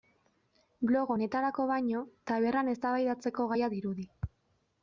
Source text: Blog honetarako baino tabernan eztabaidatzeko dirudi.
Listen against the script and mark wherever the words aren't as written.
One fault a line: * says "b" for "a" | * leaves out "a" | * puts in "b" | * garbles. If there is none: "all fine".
* puts in "gaia"